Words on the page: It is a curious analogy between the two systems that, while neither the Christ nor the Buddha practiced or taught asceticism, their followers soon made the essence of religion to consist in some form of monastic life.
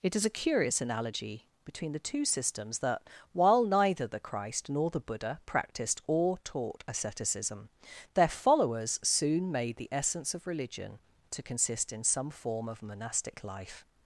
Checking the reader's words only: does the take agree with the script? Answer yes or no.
yes